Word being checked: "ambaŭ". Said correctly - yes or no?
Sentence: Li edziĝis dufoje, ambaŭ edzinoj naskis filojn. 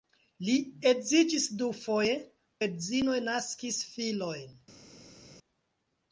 no